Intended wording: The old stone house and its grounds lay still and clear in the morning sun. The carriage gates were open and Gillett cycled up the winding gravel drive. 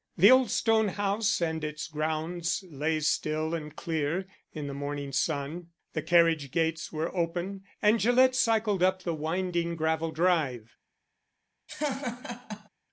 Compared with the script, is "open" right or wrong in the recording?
right